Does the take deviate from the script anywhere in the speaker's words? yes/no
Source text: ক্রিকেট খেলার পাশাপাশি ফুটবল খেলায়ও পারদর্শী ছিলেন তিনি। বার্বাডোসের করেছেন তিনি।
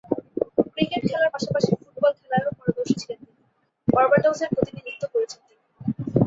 yes